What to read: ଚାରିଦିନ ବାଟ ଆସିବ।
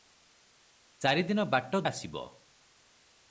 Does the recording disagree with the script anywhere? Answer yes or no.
no